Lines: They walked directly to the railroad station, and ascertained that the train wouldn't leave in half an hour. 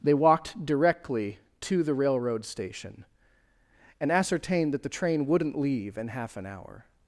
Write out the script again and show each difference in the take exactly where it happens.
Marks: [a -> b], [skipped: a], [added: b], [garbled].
They walked directly to the railroad station, and ascertained that the train wouldn't leave in half an hour.